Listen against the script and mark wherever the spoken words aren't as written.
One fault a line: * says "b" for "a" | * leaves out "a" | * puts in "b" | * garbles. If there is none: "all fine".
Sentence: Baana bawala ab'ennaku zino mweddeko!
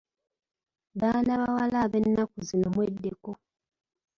all fine